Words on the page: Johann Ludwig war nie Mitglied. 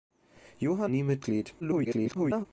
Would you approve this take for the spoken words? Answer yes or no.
no